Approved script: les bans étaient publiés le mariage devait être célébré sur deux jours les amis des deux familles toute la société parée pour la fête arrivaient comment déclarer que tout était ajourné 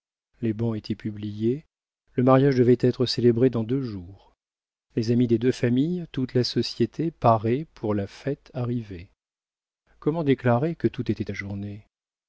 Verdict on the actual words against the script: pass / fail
fail